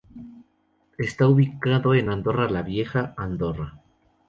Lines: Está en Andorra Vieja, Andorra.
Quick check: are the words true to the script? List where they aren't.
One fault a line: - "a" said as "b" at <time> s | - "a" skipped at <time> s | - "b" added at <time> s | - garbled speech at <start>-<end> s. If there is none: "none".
- "ubicado" added at 1.3 s
- "la" added at 2.5 s